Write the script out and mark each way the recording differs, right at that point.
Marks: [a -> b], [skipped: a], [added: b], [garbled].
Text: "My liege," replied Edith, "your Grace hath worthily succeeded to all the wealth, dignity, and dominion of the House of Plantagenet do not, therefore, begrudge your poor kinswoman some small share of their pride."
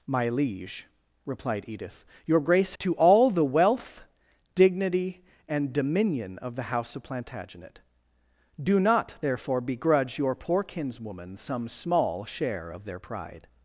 "My liege," replied Edith, "your Grace [skipped: hath worthily succeeded] to all the wealth, dignity, and dominion of the House of Plantagenet do not, therefore, begrudge your poor kinswoman some small share of their pride."